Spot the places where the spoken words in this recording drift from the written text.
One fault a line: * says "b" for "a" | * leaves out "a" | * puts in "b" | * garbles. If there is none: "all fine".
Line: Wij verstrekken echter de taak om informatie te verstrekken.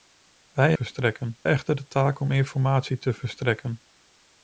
all fine